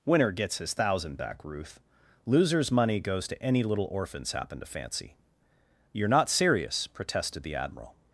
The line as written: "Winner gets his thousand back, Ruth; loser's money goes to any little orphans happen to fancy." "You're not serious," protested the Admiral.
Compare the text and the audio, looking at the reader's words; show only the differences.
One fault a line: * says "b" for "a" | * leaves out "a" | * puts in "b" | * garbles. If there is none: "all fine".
all fine